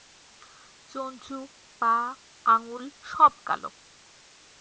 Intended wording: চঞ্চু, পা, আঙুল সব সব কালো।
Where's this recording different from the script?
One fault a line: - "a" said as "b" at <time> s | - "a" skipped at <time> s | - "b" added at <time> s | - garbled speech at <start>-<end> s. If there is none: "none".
- "সব" skipped at 3.3 s